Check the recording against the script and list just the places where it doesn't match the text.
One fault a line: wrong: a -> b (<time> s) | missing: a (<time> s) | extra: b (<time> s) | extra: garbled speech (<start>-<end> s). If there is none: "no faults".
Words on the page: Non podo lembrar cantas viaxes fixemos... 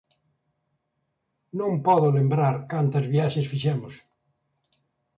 no faults